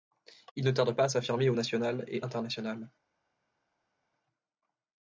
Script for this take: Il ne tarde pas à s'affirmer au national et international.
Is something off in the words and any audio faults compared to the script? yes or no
no